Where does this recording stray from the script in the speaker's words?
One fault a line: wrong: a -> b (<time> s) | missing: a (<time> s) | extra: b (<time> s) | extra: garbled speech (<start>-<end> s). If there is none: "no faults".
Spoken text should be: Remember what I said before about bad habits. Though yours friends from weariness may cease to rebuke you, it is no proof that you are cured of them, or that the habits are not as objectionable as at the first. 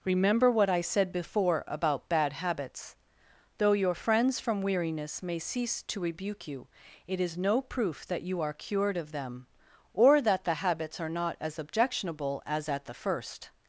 wrong: yours -> your (3.7 s)